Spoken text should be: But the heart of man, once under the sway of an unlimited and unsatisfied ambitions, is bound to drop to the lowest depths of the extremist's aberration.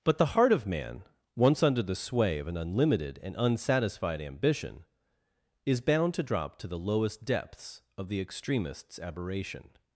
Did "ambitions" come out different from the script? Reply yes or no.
yes